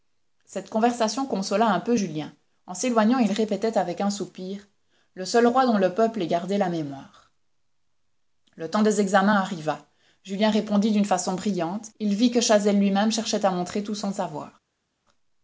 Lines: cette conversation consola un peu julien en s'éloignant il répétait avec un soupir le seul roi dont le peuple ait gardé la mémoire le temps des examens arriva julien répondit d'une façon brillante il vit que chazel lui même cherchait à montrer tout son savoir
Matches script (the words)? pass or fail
pass